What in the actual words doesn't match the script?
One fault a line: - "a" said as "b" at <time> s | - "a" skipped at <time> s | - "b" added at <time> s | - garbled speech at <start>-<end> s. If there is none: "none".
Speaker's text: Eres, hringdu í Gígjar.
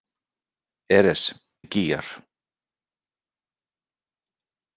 - "hringdu" skipped at 1.2 s